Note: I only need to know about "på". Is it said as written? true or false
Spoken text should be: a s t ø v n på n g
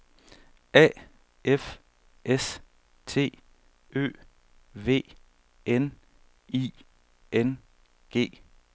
false